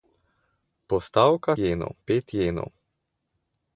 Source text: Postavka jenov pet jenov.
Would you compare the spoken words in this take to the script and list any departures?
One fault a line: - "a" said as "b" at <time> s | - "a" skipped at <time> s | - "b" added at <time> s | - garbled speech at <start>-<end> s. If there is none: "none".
none